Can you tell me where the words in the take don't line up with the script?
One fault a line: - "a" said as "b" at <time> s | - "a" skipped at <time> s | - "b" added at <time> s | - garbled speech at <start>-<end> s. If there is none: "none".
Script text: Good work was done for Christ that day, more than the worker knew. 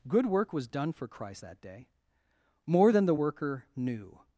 none